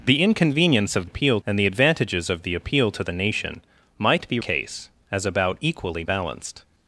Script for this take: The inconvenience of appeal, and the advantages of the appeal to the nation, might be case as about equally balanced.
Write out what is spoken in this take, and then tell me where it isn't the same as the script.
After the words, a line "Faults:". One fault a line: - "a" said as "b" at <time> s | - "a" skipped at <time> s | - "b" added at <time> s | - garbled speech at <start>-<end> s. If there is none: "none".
The inconvenience of appeal, and the advantages of the appeal to the nation, might be case as about equally balanced.
Faults:
none